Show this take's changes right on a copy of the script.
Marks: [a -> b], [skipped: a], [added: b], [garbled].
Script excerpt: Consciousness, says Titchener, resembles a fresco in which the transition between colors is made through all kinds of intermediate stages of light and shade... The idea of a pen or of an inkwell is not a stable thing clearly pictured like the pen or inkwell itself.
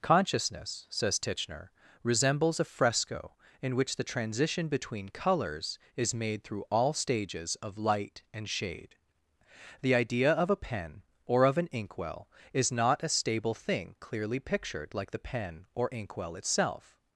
Consciousness, says Titchener, resembles a fresco in which the transition between colors is made through all [skipped: kinds of intermediate] stages of light and shade... The idea of a pen or of an inkwell is not a stable thing clearly pictured like the pen or inkwell itself.